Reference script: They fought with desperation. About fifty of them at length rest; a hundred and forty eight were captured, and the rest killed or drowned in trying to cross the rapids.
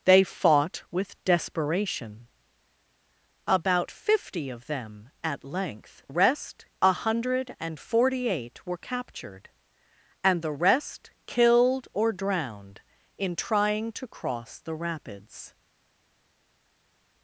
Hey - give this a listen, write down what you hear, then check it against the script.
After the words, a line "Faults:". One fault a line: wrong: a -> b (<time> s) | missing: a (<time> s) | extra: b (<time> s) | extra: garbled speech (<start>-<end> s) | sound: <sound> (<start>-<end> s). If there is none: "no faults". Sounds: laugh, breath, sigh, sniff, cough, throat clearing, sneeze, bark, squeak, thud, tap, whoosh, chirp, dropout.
They fought with desperation. About fifty of them at length rest; a hundred and forty eight were captured, and the rest killed or drowned in trying to cross the rapids.
Faults:
no faults